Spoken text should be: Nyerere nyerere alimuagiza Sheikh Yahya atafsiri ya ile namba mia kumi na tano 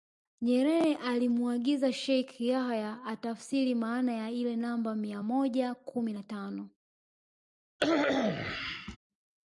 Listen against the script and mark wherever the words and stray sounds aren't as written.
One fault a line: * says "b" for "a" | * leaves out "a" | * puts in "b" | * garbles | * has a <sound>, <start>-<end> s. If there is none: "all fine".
* leaves out "nyerere"
* puts in "maana"
* puts in "moja"
* has a cough, 7.8-9.0 s